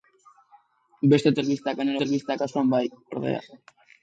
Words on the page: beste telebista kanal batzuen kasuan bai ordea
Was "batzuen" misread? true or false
true